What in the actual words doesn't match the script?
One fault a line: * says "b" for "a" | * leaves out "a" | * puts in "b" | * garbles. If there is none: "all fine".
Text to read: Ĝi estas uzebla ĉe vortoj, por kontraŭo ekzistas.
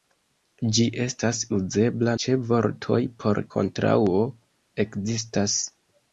all fine